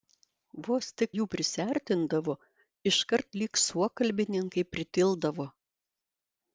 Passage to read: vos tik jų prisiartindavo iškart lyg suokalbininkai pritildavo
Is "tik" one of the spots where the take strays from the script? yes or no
no